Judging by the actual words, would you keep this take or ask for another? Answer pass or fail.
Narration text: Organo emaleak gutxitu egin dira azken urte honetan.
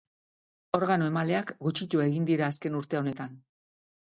pass